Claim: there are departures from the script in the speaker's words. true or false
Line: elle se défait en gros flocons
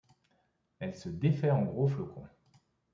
false